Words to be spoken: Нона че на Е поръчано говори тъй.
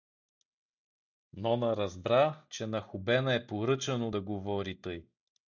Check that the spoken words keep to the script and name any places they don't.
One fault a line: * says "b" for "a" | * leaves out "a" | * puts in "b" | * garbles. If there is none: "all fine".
* puts in "разбра"
* puts in "Хубена"
* puts in "да"